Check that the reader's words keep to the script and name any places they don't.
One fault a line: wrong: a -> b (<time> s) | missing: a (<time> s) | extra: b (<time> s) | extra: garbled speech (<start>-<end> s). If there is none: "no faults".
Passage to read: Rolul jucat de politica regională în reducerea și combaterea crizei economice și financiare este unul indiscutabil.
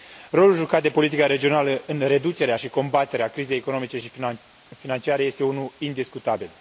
no faults